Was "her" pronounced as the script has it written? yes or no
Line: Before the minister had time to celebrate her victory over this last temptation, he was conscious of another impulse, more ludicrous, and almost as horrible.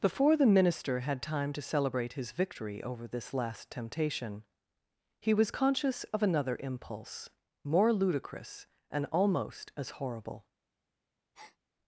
no